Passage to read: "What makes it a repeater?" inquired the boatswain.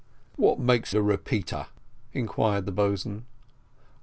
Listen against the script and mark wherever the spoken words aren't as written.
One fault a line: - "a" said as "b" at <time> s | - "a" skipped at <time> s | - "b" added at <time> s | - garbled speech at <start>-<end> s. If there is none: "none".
- "it" skipped at 0.9 s